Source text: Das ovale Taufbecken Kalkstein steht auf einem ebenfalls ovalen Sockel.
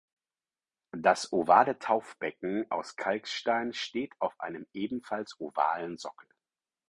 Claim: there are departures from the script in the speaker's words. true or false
true